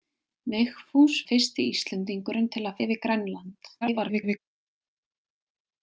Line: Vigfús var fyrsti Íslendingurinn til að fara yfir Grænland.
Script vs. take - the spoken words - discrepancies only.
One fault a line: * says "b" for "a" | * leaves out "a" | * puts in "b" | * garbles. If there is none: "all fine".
* leaves out "var"
* leaves out "fara"
* garbles